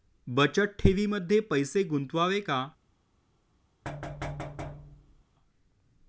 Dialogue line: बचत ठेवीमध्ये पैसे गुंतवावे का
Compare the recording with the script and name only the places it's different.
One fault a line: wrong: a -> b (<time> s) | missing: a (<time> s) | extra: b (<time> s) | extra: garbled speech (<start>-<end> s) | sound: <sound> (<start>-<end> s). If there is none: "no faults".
sound: thud (3.8-5.2 s)